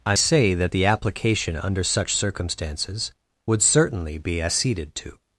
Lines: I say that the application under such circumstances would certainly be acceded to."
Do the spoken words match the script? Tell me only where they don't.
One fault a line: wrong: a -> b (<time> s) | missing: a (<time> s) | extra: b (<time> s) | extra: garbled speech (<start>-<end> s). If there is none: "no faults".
no faults